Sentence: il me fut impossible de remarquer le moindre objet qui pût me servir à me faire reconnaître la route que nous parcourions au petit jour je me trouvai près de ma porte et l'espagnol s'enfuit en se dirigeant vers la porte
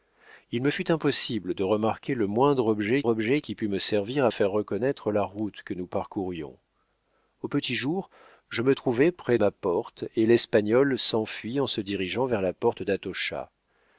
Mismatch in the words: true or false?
true